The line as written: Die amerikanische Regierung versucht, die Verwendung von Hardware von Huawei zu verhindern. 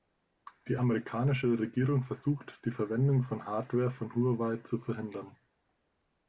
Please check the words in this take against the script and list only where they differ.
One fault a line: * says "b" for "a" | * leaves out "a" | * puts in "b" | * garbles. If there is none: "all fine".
all fine